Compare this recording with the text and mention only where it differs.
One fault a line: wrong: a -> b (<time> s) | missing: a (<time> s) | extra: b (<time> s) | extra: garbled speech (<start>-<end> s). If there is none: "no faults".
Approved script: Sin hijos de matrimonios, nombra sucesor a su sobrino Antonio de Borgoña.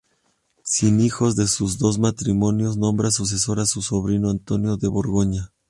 extra: sus dos (1.4 s)